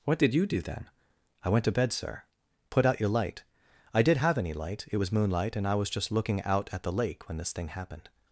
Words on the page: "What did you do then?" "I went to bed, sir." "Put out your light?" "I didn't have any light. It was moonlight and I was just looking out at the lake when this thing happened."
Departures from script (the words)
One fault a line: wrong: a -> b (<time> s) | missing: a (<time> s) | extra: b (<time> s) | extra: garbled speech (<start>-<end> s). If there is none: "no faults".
wrong: didn't -> did (4.0 s)